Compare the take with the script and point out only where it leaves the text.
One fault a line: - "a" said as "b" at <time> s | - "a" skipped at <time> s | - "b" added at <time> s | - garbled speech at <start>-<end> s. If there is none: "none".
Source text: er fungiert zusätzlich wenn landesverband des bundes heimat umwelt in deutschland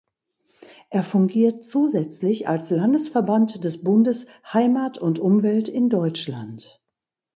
- "wenn" said as "als" at 2.5 s
- "und" added at 5.0 s